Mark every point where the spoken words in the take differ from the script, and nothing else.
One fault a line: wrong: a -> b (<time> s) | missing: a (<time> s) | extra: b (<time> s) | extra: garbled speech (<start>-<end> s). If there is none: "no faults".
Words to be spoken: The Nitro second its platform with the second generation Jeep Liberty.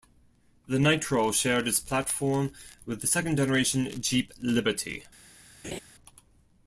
wrong: second -> shared (1.3 s)